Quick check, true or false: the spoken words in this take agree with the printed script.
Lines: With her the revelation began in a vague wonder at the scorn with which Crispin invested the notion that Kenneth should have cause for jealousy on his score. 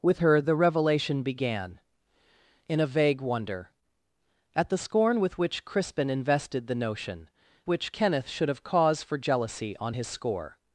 false